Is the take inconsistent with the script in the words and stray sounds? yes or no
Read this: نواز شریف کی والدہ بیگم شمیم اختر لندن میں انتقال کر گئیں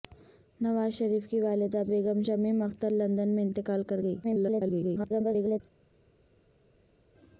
yes